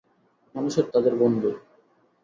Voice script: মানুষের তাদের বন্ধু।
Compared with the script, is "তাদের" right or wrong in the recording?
right